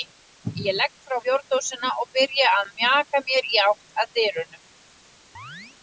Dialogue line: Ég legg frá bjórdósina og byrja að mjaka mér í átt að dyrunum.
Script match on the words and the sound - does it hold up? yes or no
no